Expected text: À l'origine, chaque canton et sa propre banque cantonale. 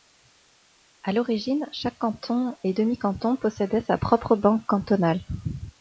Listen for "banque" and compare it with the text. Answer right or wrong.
right